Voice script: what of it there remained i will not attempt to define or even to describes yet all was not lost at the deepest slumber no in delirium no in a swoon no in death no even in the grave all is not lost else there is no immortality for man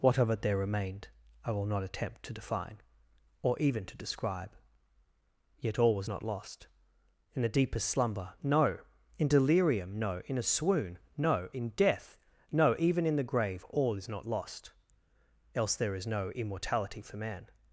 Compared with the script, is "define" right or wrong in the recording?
right